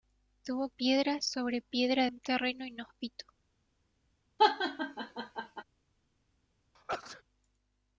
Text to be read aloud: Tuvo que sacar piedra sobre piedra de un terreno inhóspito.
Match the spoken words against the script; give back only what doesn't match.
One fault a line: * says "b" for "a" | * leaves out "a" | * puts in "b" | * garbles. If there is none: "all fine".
* leaves out "que sacar"
* leaves out "de"